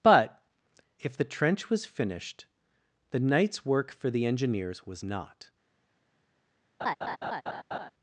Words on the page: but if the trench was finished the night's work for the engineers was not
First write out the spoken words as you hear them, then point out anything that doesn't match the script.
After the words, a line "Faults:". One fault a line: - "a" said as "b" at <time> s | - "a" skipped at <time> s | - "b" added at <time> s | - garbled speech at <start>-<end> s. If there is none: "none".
but if the trench was finished the night's work for the engineers was not
Faults:
none